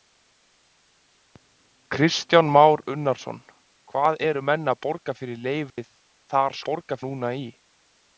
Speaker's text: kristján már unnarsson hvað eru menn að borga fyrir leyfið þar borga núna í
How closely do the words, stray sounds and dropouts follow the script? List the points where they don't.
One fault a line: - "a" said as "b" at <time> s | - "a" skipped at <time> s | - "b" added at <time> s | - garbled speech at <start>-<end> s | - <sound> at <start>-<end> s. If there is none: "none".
- dropout at 5.7-5.8 s